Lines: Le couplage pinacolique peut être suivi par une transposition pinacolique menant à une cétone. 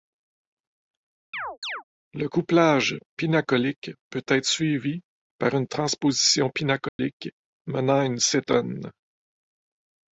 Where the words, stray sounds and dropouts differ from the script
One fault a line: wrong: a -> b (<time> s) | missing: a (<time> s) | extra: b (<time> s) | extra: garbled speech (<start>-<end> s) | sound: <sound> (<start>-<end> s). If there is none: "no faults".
sound: chirp (1.3-1.8 s)
sound: dropout (6.9-7.0 s)